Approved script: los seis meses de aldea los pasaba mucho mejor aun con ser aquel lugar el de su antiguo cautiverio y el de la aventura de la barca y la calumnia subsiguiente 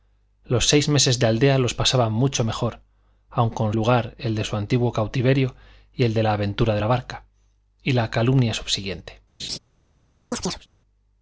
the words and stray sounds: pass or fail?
fail